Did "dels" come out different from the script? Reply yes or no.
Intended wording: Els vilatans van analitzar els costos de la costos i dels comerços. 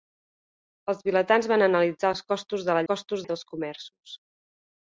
no